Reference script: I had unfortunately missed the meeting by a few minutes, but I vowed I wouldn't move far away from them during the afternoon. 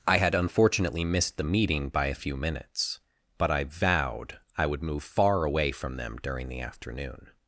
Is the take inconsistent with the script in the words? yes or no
yes